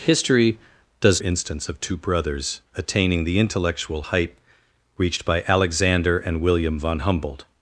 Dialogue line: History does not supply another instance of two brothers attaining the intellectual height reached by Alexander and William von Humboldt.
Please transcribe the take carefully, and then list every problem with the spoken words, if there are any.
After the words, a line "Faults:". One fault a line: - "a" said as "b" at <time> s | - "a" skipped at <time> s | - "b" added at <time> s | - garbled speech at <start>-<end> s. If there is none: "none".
History does instance of two brothers attaining the intellectual height reached by Alexander and William von Humboldt.
Faults:
- "not supply another" skipped at 1.2 s